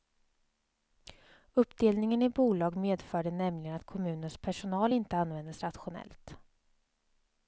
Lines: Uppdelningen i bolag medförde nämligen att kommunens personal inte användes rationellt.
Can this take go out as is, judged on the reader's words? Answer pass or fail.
pass